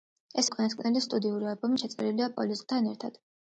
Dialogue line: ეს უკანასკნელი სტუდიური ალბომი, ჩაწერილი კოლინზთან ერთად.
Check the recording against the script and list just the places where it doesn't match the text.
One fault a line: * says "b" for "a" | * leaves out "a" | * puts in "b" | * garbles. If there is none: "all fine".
all fine